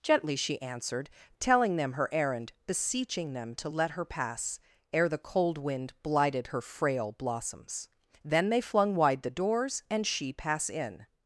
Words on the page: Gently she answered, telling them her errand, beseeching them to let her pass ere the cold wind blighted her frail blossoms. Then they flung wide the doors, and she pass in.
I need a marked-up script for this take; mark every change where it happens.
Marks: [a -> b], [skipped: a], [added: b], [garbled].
Gently she answered, telling them her errand, beseeching them to let her pass ere the cold wind blighted her frail blossoms. Then they flung wide the doors, and she pass in.